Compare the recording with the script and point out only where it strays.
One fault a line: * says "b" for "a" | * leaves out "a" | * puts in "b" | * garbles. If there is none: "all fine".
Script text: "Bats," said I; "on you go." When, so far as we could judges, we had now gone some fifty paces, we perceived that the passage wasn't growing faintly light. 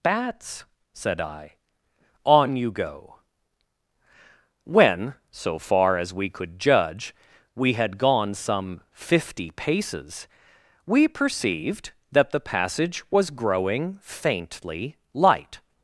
* says "judge" for "judges"
* leaves out "now"
* says "was" for "wasn't"